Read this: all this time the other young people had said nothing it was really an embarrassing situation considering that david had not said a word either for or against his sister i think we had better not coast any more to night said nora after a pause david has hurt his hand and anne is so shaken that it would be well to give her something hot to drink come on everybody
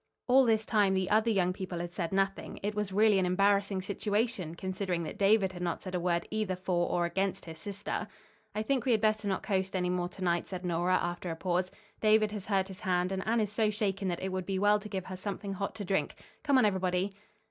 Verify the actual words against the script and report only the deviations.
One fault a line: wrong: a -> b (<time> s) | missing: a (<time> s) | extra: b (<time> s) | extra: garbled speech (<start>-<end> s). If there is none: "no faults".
no faults